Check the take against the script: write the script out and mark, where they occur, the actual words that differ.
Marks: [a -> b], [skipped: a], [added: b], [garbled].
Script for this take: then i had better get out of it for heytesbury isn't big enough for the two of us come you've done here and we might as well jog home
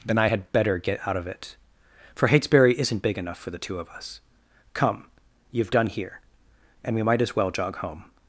then i had better get out of it for heytesbury isn't big enough for the two of us come you've done here and we might as well jog home